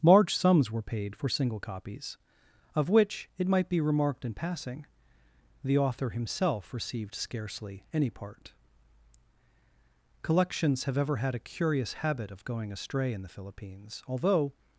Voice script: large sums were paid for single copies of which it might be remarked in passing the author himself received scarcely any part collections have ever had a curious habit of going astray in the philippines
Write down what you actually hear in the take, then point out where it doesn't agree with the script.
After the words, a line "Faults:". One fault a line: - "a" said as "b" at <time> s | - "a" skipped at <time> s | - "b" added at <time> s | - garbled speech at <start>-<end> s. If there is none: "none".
large sums were paid for single copies of which it might be remarked in passing the author himself received scarcely any part collections have ever had a curious habit of going astray in the philippines although
Faults:
- "although" added at 14.1 s